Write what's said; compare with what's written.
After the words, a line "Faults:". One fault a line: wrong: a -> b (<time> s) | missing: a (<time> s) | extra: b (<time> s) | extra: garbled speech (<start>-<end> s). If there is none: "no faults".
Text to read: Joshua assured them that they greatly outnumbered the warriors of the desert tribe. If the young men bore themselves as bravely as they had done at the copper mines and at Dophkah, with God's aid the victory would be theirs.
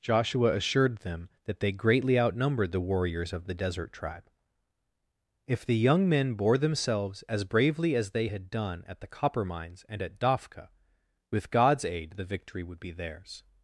Joshua assured them that they greatly outnumbered the warriors of the desert tribe. If the young men bore themselves as bravely as they had done at the copper mines and at Dophkah, with God's aid the victory would be theirs.
Faults:
no faults